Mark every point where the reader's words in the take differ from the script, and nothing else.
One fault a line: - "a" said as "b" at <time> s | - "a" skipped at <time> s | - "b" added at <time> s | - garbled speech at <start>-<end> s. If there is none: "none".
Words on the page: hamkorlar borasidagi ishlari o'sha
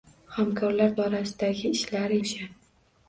none